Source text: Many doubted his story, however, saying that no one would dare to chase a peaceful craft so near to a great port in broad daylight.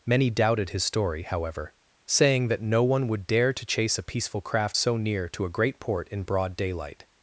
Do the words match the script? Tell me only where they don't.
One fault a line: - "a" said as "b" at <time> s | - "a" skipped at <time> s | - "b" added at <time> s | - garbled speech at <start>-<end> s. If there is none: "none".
none